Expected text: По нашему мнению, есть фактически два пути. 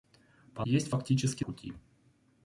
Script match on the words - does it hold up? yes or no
no